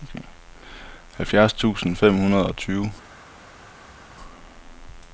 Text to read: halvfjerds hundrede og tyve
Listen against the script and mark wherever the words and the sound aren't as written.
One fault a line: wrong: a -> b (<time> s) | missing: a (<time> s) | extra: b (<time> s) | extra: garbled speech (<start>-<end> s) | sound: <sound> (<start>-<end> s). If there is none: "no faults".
extra: tusind fem (1.5 s)